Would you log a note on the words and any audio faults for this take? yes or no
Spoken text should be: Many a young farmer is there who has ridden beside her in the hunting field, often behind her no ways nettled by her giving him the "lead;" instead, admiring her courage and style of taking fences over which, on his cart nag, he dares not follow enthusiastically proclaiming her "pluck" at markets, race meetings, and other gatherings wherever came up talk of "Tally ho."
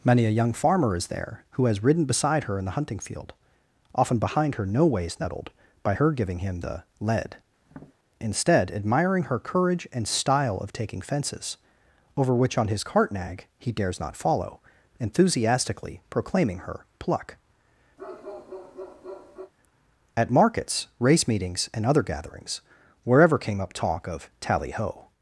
yes